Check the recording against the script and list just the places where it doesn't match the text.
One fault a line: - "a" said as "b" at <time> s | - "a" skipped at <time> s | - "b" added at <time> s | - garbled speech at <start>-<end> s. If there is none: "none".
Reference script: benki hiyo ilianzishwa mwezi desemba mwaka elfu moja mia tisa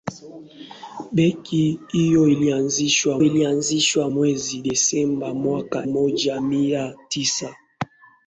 - "ilianzishwa" added at 3.2 s
- "elfu" skipped at 5.9 s